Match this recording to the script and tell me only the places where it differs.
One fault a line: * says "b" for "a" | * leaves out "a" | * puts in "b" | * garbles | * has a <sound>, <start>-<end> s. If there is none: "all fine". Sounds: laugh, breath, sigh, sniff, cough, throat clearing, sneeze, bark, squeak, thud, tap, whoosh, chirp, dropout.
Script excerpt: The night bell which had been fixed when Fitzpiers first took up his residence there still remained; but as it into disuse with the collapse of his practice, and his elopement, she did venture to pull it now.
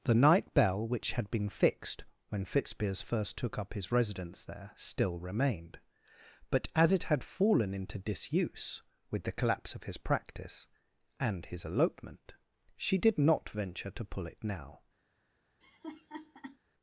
* puts in "had fallen"
* puts in "not"
* has a laugh, 15.6-16.6 s